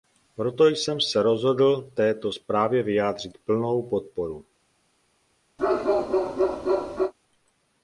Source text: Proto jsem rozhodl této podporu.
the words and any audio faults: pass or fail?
fail